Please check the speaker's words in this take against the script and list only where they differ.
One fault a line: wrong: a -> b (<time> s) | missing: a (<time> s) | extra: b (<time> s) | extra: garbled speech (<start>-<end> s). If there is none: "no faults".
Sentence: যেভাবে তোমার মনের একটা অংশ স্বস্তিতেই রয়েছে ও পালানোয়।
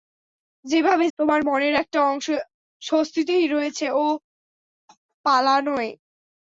no faults